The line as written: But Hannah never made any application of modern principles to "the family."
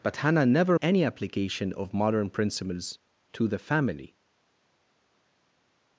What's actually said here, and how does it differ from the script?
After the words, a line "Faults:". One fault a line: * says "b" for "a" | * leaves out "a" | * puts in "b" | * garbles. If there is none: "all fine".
But Hannah never any application of modern principles to "the family."
Faults:
* leaves out "made"